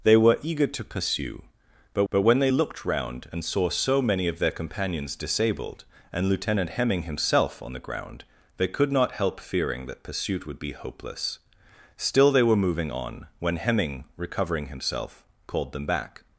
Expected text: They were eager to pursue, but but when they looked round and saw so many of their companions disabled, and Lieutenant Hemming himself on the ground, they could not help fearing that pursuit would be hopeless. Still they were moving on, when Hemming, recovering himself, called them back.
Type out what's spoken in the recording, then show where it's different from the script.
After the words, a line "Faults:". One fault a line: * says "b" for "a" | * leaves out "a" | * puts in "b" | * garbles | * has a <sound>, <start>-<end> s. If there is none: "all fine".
They were eager to pursue, but but when they looked round and saw so many of their companions disabled, and Lieutenant Hemming himself on the ground, they could not help fearing that pursuit would be hopeless. Still they were moving on, when Hemming, recovering himself, called them back.
Faults:
all fine